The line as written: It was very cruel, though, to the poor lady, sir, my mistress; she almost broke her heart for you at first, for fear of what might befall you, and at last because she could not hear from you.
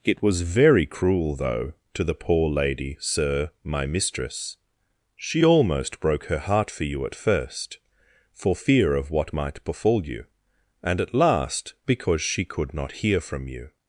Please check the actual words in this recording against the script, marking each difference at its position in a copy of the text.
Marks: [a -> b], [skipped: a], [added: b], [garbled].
It was very cruel, though, to the poor lady, sir, my mistress; she almost broke her heart for you at first, for fear of what might befall you, and at last because she could not hear from you.